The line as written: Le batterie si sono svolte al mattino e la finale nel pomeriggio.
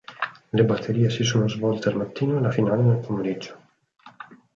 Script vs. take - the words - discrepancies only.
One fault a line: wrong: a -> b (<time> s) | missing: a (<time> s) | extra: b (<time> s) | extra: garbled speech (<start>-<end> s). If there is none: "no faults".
no faults